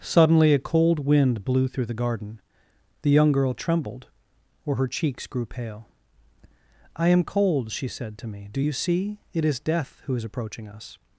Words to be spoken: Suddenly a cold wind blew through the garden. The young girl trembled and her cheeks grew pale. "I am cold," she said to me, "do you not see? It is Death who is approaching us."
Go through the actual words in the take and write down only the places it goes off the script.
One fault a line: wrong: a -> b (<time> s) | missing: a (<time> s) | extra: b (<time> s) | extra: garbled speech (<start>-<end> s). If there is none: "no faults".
wrong: and -> or (4.7 s)
missing: not (8.7 s)